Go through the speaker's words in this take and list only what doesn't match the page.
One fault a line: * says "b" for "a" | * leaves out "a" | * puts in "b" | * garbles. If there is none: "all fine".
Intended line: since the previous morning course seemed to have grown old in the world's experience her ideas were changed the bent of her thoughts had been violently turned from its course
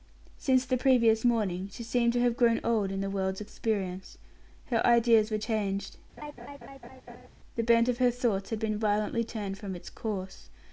* says "she" for "course"